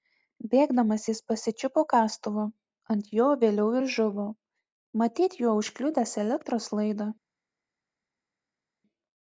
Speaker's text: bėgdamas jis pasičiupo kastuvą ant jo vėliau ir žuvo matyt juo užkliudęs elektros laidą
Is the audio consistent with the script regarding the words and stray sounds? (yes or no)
yes